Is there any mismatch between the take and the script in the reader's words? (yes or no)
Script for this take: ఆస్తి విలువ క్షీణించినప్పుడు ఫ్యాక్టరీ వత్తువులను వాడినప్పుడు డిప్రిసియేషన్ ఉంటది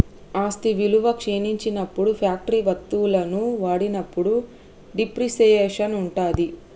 no